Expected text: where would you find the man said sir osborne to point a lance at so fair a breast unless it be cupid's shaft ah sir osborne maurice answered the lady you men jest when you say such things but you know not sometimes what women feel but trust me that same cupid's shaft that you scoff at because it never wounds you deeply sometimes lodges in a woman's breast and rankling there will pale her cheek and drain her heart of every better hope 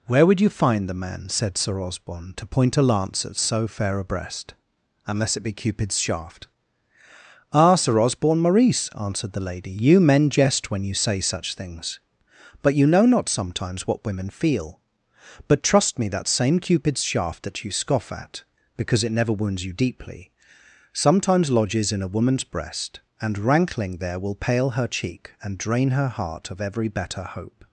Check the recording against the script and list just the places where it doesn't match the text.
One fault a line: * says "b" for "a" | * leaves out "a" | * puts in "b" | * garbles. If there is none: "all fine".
all fine